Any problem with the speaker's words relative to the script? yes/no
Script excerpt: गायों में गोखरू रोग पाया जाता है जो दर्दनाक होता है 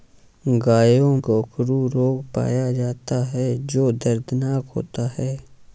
yes